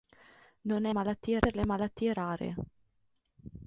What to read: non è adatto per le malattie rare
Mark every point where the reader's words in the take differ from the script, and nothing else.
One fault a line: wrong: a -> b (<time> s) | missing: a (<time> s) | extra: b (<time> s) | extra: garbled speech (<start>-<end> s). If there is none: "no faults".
wrong: adatto -> malattie (0.9 s)